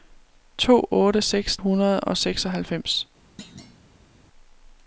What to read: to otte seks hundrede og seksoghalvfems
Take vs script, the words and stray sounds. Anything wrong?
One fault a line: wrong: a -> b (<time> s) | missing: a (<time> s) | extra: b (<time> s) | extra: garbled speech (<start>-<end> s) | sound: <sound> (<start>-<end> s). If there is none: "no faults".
sound: thud (3.4-4.1 s)